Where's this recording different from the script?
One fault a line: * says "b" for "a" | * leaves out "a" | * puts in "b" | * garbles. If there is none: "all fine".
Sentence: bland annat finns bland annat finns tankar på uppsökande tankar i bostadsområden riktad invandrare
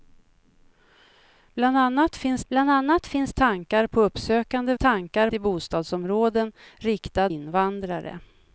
all fine